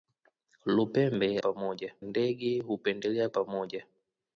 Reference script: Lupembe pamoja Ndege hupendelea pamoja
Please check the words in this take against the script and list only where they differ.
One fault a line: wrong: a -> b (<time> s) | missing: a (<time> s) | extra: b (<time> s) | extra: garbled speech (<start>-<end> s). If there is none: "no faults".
no faults